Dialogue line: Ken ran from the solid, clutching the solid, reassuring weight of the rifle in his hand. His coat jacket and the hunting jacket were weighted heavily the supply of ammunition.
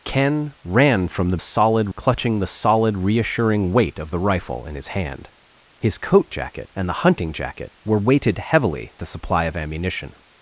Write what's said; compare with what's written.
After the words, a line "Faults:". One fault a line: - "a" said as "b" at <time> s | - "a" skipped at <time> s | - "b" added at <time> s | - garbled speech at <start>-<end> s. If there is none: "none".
Ken ran from the solid, clutching the solid, reassuring weight of the rifle in his hand. His coat jacket and the hunting jacket were weighted heavily the supply of ammunition.
Faults:
none